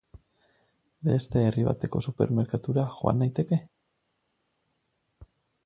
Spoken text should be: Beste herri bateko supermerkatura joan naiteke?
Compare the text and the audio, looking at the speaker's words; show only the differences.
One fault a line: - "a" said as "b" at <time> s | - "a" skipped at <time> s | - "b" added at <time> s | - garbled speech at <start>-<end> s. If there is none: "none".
none